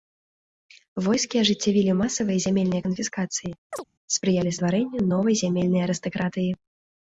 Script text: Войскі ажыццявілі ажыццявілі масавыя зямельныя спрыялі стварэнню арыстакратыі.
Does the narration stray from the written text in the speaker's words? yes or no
yes